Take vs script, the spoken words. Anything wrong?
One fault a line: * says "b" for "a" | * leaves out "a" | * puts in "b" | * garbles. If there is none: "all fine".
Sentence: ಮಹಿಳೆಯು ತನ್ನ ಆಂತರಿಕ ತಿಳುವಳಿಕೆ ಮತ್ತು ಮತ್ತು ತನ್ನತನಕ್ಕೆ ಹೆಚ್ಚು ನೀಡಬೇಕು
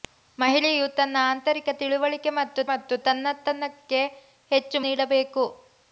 all fine